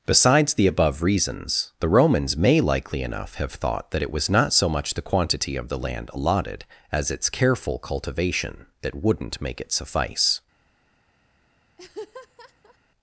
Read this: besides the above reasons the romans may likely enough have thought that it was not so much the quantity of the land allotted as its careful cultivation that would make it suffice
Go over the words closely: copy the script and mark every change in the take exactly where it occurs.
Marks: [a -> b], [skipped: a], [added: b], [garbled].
besides the above reasons the romans may likely enough have thought that it was not so much the quantity of the land allotted as its careful cultivation that [would -> wouldn't] make it suffice